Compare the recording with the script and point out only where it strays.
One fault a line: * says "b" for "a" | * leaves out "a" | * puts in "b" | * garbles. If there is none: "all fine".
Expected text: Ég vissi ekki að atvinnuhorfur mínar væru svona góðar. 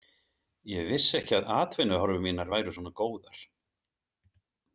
all fine